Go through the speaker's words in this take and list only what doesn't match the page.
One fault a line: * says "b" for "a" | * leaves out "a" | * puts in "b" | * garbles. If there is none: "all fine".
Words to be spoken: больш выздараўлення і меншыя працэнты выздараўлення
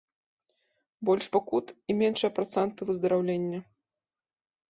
* says "пакут" for "выздараўлення"